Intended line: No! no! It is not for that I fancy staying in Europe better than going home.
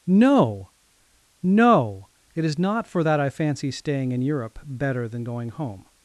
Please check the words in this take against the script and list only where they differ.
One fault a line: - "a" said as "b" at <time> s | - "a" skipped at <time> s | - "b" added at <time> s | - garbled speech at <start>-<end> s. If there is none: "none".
none